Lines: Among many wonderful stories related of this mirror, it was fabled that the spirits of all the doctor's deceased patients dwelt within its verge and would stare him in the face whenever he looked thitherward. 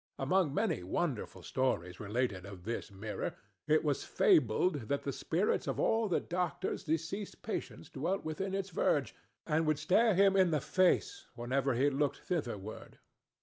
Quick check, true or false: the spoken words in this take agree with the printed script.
true